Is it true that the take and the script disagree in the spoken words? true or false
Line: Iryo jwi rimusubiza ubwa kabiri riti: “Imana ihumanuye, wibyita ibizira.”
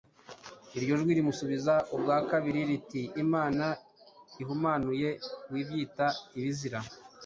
false